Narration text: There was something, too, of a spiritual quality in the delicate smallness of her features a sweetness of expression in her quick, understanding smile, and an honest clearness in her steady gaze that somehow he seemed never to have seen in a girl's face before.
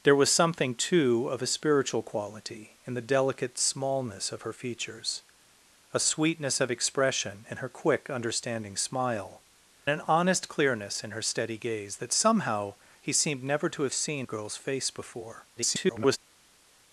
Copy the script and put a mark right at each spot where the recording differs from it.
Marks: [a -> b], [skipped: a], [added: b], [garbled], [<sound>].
There was something, too, of a spiritual quality in the delicate smallness of her features a sweetness of expression in her quick, understanding smile, [skipped: and] an honest clearness in her steady gaze that somehow he seemed never to have seen [skipped: in] a girl's face before. [garbled]